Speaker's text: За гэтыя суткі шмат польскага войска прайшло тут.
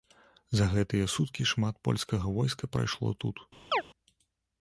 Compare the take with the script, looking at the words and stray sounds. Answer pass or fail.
fail